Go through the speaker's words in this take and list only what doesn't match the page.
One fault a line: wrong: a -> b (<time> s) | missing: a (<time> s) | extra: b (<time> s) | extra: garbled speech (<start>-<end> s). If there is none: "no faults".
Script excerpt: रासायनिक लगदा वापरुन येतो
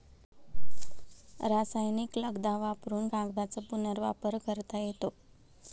extra: कागदाचा पुनर्वापर करता (3.1 s)